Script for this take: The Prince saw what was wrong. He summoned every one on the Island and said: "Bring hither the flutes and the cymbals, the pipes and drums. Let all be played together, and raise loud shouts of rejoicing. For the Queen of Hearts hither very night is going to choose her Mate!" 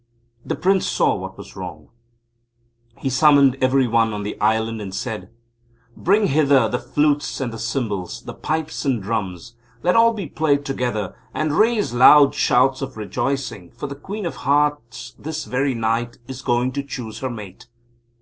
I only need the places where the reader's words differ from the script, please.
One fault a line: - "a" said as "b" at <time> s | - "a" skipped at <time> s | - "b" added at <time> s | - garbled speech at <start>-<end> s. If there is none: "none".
- "hither" said as "this" at 15.2 s